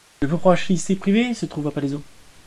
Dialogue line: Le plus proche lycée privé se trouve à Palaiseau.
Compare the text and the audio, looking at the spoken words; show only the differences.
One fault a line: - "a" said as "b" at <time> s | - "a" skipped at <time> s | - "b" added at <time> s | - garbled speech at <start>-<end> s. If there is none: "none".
none